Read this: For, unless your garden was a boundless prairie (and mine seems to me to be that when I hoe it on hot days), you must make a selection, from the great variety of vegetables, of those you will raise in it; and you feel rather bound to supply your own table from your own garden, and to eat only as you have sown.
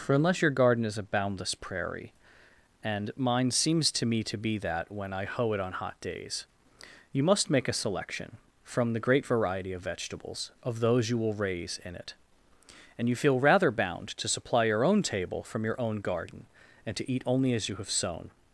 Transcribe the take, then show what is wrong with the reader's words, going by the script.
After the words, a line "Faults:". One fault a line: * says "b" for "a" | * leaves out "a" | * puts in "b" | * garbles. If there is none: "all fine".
For, unless your garden is a boundless prairie (and mine seems to me to be that when I hoe it on hot days), you must make a selection, from the great variety of vegetables, of those you will raise in it; and you feel rather bound to supply your own table from your own garden, and to eat only as you have sown.
Faults:
* says "is" for "was"